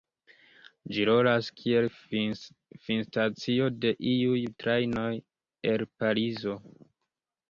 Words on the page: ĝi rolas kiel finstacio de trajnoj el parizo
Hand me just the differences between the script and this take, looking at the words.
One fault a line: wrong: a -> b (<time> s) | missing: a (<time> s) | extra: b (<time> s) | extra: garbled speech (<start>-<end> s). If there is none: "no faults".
extra: iuj (4.1 s)